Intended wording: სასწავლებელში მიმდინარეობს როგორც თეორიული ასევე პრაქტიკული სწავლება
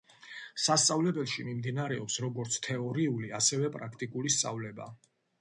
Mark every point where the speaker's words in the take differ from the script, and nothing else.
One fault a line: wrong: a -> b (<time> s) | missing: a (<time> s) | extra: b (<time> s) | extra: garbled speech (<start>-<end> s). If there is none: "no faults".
no faults